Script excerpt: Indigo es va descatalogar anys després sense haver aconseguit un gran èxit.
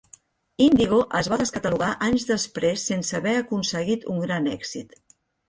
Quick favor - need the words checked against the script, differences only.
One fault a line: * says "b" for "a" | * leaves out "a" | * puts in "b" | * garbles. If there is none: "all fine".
all fine